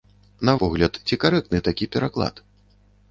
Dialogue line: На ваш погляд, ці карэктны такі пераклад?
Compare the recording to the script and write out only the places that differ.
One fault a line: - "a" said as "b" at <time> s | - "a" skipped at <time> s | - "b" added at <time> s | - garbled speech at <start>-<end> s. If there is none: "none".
- "ваш" skipped at 0.5 s